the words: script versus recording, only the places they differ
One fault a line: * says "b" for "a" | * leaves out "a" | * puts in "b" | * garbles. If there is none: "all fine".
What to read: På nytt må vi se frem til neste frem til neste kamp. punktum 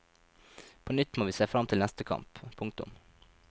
* leaves out "frem til neste"